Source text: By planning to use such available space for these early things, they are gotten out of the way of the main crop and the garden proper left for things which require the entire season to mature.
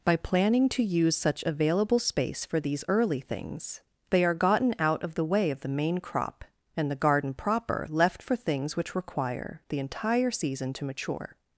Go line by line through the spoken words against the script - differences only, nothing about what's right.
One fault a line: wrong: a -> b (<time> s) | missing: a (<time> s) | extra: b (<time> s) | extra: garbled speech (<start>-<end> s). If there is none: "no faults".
no faults